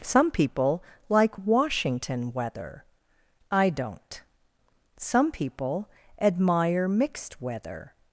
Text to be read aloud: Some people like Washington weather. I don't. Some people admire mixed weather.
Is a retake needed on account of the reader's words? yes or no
no